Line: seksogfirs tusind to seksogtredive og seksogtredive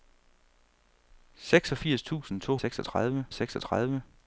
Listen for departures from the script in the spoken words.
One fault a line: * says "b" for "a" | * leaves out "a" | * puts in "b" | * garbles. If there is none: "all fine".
all fine